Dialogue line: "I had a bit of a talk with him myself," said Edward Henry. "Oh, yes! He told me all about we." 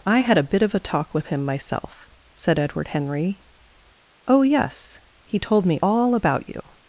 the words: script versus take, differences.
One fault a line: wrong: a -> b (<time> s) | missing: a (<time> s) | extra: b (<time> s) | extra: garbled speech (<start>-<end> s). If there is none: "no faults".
wrong: we -> you (6.5 s)